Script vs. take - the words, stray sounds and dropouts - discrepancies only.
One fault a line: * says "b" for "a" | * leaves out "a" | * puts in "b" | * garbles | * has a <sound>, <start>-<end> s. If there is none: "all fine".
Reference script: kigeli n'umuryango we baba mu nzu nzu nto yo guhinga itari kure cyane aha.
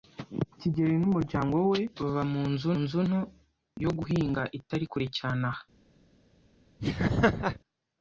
* has a laugh, 6.8-7.6 s